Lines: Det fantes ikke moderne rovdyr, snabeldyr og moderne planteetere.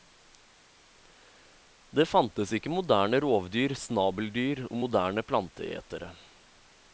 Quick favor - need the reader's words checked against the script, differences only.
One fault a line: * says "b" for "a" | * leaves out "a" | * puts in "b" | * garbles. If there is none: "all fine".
all fine